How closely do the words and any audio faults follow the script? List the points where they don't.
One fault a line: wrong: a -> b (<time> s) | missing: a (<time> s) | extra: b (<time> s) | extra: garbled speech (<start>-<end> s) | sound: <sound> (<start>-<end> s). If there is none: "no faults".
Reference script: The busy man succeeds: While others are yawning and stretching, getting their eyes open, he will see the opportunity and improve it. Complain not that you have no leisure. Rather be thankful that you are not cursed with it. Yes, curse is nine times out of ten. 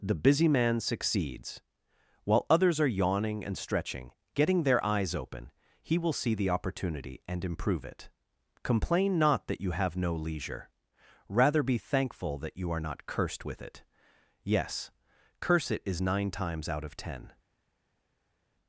extra: it (15.7 s)